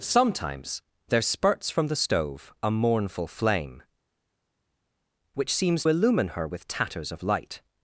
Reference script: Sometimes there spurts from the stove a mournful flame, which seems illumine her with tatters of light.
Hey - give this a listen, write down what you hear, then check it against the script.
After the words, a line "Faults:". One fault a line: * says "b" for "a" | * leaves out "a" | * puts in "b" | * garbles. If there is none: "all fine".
Sometimes there spurts from the stove a mournful flame, which seems illumine her with tatters of light.
Faults:
all fine